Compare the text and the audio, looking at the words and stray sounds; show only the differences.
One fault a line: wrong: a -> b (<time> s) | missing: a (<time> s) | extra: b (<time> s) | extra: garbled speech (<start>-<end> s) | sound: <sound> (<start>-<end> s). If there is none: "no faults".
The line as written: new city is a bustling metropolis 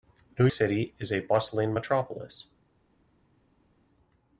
no faults